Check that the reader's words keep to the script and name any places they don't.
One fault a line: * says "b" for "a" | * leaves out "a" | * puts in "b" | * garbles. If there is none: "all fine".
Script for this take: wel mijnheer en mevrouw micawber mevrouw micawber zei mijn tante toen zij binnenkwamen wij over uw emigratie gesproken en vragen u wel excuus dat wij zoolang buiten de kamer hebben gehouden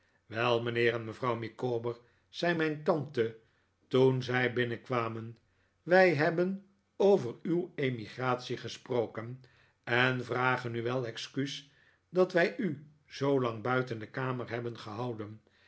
* leaves out "mevrouw micawber"
* puts in "hebben"
* puts in "u"